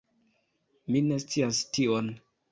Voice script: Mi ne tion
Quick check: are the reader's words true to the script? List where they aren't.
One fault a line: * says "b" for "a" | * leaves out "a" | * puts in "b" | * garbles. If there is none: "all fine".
* puts in "scias"